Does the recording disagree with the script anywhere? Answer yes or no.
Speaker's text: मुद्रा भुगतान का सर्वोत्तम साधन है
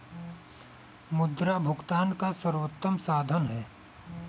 no